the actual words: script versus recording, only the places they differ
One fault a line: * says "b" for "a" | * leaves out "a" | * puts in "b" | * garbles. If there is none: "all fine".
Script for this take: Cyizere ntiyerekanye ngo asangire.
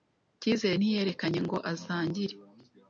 all fine